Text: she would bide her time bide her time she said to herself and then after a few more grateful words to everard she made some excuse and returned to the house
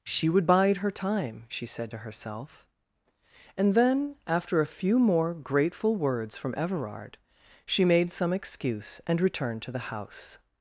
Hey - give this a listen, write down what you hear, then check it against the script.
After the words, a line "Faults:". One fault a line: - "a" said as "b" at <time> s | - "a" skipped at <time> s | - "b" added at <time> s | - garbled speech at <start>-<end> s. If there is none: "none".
she would bide her time she said to herself and then after a few more grateful words from everard she made some excuse and returned to the house
Faults:
- "bide her time" skipped at 1.4 s
- "to" said as "from" at 6.4 s